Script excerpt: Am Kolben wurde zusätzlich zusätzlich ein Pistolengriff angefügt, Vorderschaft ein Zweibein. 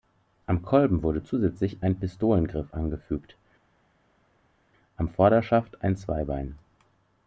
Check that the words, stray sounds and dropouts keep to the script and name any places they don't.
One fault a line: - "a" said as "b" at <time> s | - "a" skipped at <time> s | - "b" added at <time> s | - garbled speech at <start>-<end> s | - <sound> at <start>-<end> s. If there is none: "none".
- "zusätzlich" skipped at 1.8 s
- "am" added at 5.0 s